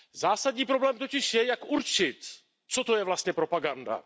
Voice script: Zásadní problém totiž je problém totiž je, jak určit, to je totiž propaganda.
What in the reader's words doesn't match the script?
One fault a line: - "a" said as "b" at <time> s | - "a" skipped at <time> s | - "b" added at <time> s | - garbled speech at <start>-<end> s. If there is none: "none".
- "problém totiž je" skipped at 1.4 s
- "co" added at 2.7 s
- "totiž" said as "vlastně" at 3.0 s